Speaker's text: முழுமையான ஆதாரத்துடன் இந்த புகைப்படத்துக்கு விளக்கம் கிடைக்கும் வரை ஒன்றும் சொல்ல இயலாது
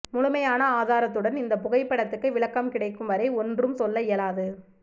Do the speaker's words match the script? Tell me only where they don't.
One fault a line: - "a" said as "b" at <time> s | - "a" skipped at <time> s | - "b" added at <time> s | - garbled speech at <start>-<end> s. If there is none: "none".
none